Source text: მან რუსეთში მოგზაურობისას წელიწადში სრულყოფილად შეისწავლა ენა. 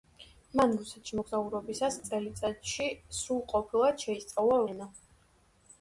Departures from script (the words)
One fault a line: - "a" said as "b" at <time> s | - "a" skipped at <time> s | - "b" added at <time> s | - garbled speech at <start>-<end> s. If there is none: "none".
none